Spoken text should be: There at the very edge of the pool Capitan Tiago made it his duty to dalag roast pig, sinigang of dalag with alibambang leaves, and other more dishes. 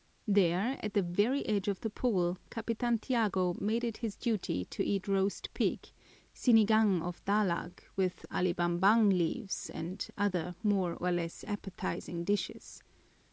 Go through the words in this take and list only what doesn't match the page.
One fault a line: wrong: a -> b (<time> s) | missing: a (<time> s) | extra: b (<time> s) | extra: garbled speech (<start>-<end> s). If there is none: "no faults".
wrong: dalag -> eat (4.8 s)
extra: or less appetizing (10.9 s)